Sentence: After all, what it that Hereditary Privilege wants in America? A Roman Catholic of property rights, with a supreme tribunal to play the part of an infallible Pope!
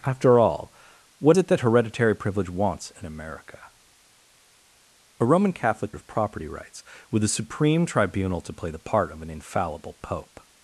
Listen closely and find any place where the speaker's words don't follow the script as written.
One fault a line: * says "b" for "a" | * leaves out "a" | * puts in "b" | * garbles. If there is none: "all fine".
all fine